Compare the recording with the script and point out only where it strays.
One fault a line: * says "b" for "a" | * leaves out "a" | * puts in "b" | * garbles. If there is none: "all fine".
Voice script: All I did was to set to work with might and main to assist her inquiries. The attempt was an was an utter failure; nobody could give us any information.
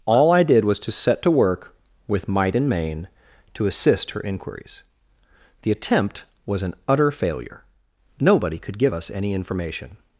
* leaves out "was an"